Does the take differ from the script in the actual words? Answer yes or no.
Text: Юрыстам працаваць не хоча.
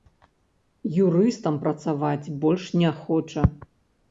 yes